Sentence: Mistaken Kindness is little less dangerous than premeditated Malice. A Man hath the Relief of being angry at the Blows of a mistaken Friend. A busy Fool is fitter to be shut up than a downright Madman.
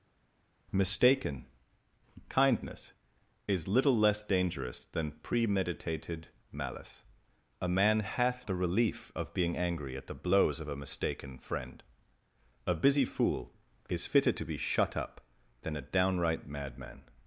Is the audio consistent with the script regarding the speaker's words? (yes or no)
yes